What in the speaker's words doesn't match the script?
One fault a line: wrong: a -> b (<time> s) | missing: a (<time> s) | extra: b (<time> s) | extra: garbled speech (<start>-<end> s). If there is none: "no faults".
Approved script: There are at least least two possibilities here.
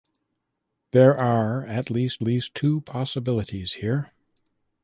no faults